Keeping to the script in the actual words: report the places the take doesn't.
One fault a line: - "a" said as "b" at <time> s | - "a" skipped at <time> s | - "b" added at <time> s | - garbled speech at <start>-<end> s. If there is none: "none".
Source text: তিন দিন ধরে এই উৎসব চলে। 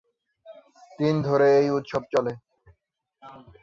- "দিন" skipped at 1.1 s